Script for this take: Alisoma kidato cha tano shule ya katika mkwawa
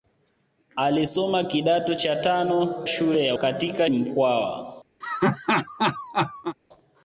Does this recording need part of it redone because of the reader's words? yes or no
no